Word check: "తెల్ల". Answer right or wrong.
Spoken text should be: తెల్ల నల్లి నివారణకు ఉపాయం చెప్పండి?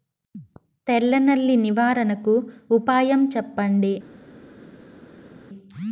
right